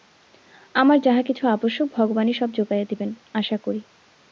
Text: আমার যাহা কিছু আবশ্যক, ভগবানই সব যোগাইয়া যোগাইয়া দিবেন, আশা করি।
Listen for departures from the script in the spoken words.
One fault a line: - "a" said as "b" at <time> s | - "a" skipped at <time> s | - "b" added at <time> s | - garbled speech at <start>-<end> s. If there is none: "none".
- "যোগাইয়া" skipped at 2.9 s